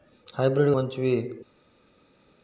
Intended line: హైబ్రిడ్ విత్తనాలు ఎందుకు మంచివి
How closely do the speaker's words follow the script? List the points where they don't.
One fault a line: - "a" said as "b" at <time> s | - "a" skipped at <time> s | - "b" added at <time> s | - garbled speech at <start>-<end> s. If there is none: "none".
- "విత్తనాలు ఎందుకు" skipped at 0.7 s